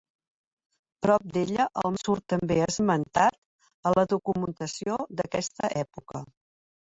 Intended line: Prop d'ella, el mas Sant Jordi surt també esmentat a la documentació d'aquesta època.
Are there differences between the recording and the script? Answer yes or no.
yes